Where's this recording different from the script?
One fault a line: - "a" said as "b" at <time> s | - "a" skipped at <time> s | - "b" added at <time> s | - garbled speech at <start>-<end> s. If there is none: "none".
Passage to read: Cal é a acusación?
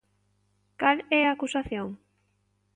none